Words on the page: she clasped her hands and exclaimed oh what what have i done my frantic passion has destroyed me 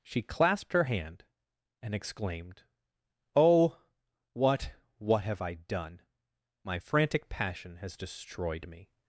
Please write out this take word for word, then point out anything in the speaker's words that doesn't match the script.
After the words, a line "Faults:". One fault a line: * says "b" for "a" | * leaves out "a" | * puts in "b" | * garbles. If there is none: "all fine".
she clasped her hand and exclaimed oh what what have i done my frantic passion has destroyed me
Faults:
* says "hand" for "hands"